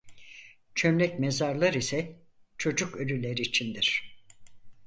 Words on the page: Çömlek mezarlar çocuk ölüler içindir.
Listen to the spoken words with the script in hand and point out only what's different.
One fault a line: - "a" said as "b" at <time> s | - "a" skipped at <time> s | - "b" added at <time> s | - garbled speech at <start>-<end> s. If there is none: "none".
- "ise" added at 1.7 s